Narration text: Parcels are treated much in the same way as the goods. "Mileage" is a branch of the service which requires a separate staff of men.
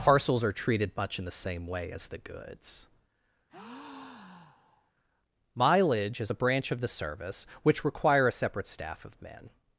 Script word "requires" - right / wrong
wrong